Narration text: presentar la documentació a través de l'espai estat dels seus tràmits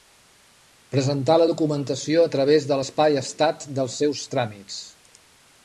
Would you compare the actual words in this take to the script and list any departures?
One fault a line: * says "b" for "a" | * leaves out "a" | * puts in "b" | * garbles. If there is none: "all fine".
all fine